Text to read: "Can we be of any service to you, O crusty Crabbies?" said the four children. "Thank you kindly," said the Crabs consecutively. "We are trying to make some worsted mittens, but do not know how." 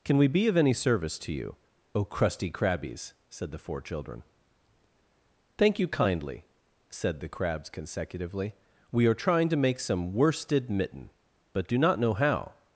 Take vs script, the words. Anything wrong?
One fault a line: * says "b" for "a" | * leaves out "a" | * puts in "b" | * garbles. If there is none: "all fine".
* says "mitten" for "mittens"